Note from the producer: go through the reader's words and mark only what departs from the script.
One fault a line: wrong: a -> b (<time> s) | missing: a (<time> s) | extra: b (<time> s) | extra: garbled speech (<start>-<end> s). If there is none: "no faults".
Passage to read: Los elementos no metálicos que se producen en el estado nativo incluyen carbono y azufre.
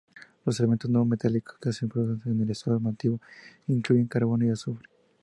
no faults